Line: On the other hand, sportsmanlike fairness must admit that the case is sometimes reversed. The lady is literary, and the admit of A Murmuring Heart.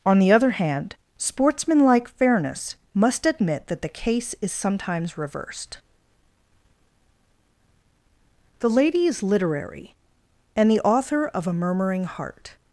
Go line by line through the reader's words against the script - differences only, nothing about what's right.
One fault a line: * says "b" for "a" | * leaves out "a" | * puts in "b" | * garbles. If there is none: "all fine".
* says "author" for "admit"